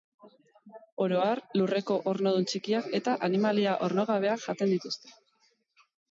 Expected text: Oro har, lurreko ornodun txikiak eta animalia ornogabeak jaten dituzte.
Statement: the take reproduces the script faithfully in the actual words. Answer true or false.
true